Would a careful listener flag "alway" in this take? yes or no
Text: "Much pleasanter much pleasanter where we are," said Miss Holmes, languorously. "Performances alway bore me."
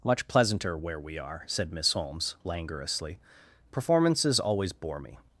yes